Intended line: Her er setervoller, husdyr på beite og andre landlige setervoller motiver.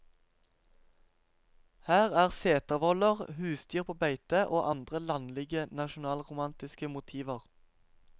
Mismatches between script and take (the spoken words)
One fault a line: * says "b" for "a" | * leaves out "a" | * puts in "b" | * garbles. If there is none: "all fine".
* says "nasjonalromantiske" for "setervoller"